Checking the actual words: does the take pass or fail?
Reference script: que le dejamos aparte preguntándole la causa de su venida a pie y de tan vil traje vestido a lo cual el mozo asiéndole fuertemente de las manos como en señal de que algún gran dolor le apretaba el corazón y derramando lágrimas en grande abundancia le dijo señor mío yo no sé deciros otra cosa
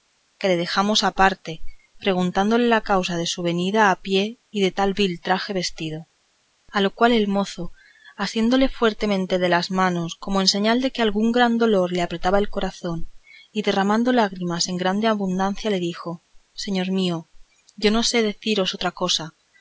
pass